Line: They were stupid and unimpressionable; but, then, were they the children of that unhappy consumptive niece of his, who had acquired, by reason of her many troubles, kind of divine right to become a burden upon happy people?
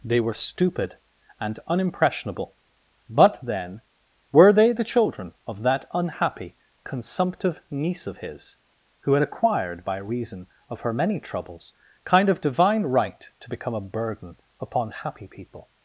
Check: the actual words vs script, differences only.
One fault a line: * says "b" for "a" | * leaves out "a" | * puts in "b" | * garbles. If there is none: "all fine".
all fine